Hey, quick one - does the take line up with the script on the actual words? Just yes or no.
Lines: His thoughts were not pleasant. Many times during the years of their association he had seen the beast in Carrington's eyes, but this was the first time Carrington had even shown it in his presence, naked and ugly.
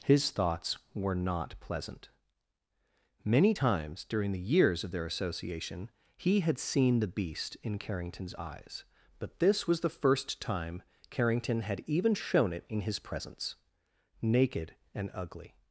yes